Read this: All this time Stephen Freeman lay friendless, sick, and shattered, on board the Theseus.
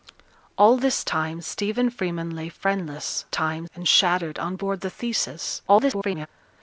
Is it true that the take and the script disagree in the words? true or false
true